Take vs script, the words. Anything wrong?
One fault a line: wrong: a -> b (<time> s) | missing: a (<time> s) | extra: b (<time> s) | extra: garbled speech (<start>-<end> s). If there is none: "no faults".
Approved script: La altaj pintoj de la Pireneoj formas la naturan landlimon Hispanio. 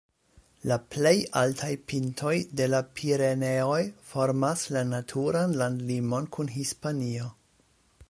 extra: plej (0.9 s)
extra: kun (6.4 s)